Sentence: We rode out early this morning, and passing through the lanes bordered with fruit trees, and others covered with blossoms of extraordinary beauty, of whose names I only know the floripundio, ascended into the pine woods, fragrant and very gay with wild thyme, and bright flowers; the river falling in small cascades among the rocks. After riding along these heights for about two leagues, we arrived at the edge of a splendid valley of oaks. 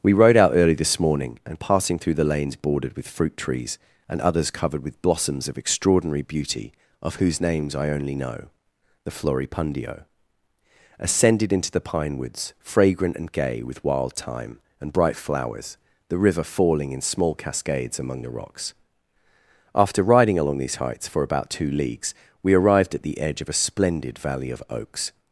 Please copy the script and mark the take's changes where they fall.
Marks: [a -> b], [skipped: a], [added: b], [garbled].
We rode out early this morning, and passing through the lanes bordered with fruit trees, and others covered with blossoms of extraordinary beauty, of whose names I only know the floripundio, ascended into the pine woods, fragrant and [skipped: very] gay with wild thyme, and bright flowers; the river falling in small cascades among the rocks. After riding along these heights for about two leagues, we arrived at the edge of a splendid valley of oaks.